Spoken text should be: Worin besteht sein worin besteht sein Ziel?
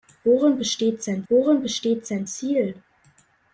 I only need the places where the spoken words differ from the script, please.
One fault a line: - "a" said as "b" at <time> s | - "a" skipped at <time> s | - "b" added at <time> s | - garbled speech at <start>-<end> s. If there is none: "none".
none